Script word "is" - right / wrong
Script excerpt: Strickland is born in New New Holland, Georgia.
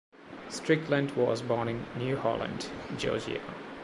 wrong